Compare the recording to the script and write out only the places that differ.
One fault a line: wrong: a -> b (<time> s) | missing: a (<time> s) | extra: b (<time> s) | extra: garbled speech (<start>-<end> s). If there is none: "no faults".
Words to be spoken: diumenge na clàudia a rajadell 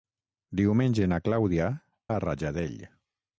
no faults